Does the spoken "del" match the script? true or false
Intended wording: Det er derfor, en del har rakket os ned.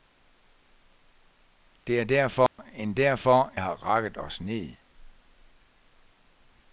false